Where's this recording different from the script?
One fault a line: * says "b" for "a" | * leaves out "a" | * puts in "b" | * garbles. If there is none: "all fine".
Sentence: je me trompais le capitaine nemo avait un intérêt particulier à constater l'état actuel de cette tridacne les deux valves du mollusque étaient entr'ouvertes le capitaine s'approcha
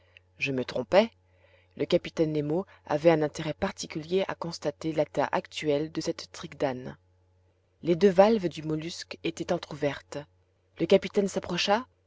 all fine